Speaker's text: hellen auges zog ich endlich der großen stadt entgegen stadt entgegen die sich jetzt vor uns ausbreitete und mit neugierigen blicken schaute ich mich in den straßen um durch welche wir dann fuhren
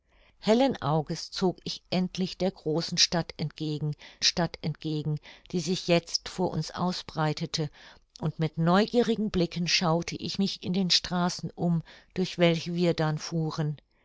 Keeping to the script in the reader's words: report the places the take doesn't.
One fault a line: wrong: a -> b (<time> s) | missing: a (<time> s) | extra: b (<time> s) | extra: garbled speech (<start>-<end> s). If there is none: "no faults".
no faults